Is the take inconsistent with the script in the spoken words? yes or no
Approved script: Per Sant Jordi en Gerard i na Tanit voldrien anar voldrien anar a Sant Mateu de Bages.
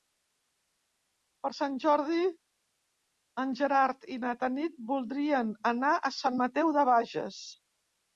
yes